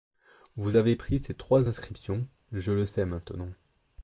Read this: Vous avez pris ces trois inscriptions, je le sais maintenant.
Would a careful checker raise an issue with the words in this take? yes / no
no